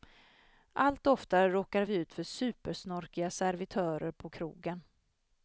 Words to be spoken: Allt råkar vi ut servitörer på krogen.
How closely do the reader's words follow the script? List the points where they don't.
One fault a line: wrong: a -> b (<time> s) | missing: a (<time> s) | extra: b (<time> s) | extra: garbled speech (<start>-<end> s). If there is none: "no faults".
extra: oftare (1.1 s)
extra: för supersnorkiga (2.1 s)